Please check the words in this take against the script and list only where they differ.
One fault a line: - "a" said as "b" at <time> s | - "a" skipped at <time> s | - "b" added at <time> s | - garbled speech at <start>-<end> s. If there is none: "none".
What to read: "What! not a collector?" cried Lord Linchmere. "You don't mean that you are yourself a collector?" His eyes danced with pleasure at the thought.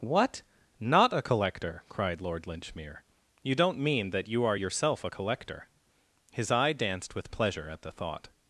- "eyes" said as "eye" at 6.5 s